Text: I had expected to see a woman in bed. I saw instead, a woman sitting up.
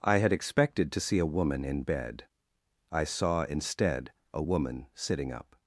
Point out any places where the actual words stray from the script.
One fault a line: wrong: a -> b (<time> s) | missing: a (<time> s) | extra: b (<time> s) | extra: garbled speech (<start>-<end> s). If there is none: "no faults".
no faults